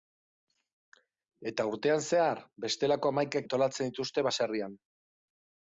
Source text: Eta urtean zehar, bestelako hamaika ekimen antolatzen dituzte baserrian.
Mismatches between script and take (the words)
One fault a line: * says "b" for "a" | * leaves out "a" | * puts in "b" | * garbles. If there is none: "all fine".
* leaves out "ekimen"